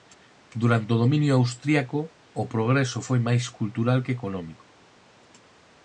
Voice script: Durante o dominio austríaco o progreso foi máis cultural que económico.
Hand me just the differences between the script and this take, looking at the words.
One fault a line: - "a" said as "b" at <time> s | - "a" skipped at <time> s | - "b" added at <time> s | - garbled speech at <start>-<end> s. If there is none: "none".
none